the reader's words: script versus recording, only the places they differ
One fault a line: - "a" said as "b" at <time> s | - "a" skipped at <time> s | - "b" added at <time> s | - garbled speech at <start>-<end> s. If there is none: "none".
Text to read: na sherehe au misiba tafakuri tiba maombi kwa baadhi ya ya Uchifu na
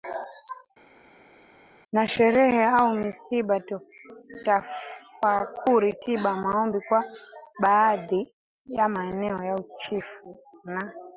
- "maeneo" added at 8.9 s